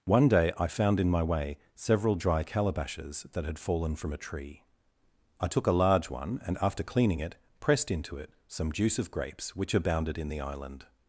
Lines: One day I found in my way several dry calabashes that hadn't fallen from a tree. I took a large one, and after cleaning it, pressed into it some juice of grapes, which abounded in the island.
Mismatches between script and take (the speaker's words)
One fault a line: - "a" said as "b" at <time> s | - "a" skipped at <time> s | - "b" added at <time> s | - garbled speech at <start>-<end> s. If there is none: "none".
- "hadn't" said as "had" at 3.5 s